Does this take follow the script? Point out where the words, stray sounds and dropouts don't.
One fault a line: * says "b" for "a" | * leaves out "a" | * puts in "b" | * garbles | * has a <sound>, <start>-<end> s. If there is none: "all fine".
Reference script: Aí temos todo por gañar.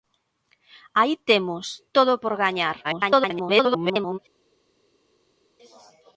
* garbles